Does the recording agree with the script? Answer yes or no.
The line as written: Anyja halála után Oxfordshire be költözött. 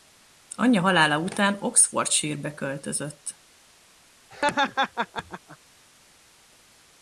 yes